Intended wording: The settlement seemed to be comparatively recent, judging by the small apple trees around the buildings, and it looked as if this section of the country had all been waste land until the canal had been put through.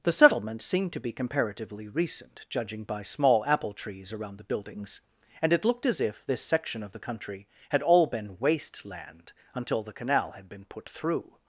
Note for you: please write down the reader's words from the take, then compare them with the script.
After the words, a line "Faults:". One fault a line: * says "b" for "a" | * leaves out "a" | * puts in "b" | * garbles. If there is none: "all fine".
The settlement seemed to be comparatively recent, judging by small apple trees around the buildings, and it looked as if this section of the country had all been waste land until the canal had been put through.
Faults:
* leaves out "the"